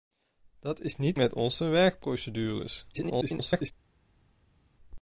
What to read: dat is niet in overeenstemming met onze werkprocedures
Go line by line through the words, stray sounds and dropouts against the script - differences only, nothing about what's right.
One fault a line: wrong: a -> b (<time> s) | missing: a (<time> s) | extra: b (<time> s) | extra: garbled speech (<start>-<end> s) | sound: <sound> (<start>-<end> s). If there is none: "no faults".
missing: in overeenstemming (1.2 s)
extra: garbled speech (2.9-3.7 s)